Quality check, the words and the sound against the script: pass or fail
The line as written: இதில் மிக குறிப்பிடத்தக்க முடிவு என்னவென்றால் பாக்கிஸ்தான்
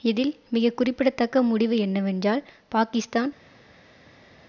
pass